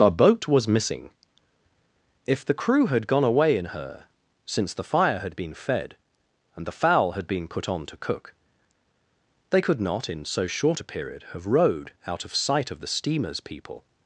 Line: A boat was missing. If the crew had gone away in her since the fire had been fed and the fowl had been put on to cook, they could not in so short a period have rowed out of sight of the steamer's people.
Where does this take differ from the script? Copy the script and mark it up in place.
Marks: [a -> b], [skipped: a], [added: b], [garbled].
A boat was missing. If the crew had gone away in her since the fire had been fed and the fowl had been put on to cook, they could not in so short a period have rowed out of sight of the steamer's people.